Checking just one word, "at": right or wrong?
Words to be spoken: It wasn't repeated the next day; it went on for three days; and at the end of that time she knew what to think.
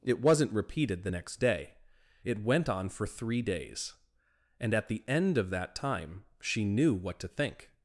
right